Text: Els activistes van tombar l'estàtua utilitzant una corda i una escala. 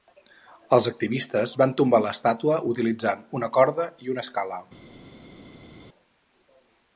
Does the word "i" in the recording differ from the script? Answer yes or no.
no